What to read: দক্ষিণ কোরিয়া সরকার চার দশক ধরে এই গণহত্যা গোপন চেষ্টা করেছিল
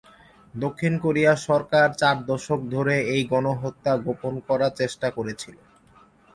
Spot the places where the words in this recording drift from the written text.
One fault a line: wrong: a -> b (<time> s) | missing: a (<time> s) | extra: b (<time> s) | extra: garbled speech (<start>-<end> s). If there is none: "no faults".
extra: করার (4.5 s)